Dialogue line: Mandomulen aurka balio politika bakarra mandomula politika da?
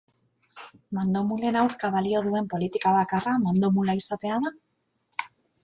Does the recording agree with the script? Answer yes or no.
no